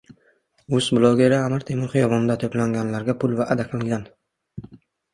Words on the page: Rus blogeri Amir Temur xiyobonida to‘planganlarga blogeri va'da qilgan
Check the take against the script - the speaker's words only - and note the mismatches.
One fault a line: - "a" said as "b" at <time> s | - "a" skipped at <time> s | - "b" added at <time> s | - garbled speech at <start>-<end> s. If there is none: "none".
- "blogeri" said as "pul" at 3.2 s